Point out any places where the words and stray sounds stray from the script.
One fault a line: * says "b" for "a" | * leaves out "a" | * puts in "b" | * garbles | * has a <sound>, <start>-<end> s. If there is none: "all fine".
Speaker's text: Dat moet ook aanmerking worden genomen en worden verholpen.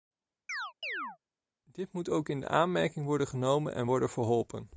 * has a chirp, 0.5-1.2 s
* says "Dit" for "Dat"
* puts in "in"